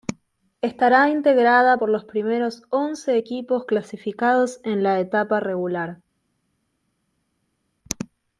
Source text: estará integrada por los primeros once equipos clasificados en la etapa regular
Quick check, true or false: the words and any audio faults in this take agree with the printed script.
true